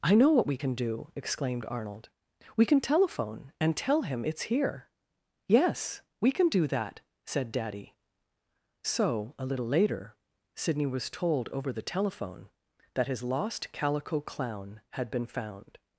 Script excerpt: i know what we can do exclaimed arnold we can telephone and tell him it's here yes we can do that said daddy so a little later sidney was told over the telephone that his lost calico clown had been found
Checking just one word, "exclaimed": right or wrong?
right